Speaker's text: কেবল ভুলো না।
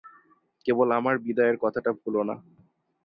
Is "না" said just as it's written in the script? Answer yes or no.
yes